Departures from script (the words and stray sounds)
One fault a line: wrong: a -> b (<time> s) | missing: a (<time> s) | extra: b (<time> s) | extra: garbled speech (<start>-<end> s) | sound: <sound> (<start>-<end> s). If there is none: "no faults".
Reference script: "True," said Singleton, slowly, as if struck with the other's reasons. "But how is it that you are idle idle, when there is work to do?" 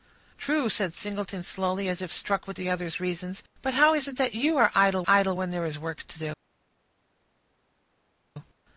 no faults